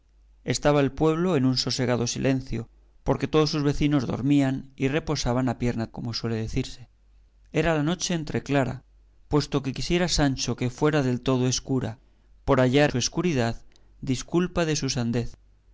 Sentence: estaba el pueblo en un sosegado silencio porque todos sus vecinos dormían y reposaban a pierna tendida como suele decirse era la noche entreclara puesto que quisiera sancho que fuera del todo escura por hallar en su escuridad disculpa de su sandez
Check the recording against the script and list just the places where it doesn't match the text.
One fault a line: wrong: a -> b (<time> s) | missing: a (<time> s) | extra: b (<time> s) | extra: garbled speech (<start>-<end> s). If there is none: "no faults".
missing: tendida (5.9 s)
missing: en (12.9 s)